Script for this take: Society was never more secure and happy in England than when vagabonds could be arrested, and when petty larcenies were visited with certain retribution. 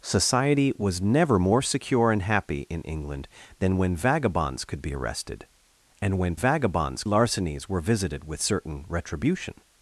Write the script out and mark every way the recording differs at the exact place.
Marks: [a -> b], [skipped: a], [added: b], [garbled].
Society was never more secure and happy in England than when vagabonds could be arrested, and when [petty -> vagabonds] larcenies were visited with certain retribution.